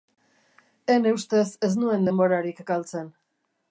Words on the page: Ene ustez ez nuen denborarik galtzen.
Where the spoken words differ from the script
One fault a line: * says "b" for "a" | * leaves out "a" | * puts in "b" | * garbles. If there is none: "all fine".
all fine